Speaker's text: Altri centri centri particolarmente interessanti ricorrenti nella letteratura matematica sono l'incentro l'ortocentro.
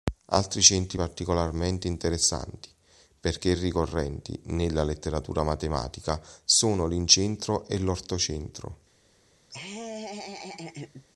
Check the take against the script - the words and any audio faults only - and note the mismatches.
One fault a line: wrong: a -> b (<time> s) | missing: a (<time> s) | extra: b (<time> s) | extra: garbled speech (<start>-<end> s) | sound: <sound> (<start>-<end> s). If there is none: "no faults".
missing: centri (1.0 s)
extra: perché (3.2 s)
extra: e (7.7 s)
sound: laugh (9.5-11.0 s)